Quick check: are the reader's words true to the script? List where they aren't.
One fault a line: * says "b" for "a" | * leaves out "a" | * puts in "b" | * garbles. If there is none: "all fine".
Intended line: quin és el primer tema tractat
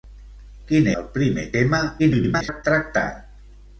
* leaves out "és"
* garbles